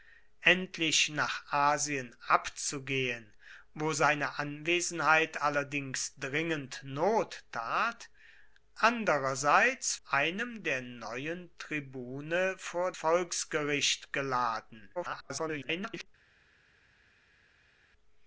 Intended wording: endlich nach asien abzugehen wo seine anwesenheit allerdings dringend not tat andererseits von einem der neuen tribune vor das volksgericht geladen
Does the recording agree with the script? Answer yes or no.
no